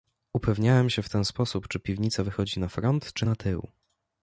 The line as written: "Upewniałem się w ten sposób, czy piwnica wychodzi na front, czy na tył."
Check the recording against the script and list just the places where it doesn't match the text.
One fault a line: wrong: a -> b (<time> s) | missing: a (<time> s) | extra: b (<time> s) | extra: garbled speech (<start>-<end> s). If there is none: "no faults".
no faults